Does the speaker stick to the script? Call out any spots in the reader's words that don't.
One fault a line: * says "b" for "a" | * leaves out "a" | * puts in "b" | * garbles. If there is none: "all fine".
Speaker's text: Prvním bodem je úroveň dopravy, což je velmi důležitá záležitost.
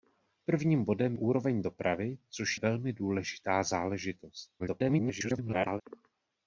* leaves out "je"
* leaves out "je"
* garbles